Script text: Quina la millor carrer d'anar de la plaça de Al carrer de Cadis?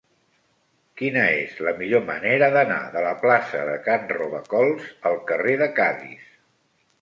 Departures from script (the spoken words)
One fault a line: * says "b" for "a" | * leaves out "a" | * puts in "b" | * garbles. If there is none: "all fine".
* puts in "és"
* says "manera" for "carrer"
* puts in "Can Robacols"